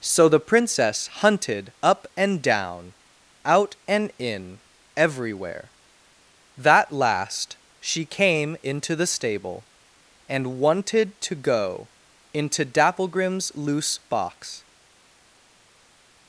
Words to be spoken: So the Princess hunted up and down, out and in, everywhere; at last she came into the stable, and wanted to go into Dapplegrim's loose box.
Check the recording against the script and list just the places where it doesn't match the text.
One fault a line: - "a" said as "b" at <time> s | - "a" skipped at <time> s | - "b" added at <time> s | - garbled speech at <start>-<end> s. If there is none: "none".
- "at" said as "that" at 6.6 s